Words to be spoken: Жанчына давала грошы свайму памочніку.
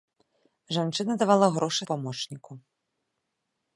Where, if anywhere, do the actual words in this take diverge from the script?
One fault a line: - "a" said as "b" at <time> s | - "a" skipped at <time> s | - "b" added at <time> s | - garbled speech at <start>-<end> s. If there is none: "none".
- "свайму" skipped at 1.8 s